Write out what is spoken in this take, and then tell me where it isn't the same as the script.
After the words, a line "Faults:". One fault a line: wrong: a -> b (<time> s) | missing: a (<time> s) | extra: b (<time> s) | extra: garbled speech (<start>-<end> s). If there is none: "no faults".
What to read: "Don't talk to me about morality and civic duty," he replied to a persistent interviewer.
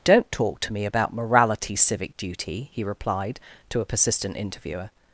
"Don't talk to me about morality civic duty," he replied to a persistent interviewer.
Faults:
missing: and (1.8 s)